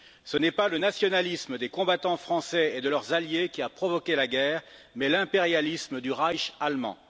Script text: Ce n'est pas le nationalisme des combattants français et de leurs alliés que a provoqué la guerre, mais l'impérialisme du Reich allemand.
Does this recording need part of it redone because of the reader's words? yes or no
yes